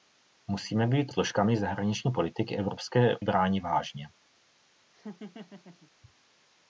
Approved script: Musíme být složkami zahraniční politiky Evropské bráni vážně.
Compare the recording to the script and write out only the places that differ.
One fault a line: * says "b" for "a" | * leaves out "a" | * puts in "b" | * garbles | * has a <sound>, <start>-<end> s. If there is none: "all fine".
* has a laugh, 4.9-5.9 s